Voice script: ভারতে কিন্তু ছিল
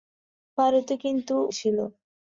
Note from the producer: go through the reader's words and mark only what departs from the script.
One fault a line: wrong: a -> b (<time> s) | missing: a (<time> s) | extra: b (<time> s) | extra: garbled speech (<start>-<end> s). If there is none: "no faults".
no faults